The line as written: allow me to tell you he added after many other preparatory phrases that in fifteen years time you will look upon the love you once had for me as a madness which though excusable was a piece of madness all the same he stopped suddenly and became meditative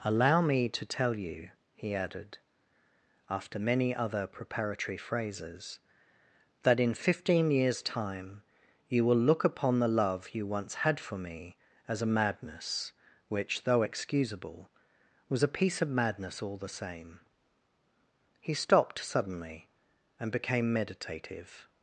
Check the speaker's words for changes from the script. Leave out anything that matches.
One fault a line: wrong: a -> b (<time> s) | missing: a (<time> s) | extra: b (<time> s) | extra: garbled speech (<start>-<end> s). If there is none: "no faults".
no faults